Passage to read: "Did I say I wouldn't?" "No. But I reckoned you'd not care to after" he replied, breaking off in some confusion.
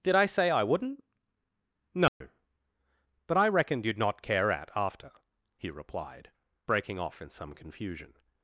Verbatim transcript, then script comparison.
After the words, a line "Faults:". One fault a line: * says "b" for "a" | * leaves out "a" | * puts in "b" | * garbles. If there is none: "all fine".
"Did I say I wouldn't?" "No. But I reckoned you'd not care at after" he replied, breaking off in some confusion.
Faults:
* says "at" for "to"